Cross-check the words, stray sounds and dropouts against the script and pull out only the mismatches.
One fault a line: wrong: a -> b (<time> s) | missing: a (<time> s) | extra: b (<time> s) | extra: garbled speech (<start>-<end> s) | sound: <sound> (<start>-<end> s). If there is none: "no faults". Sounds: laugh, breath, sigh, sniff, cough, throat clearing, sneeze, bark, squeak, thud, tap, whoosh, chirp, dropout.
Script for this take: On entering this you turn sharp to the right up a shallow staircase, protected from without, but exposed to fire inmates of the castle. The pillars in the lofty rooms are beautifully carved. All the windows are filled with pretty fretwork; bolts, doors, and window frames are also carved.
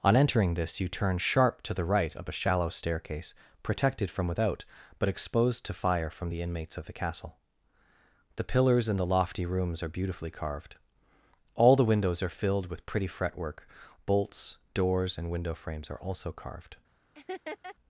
extra: from the (6.1 s)
sound: laugh (17.1-17.8 s)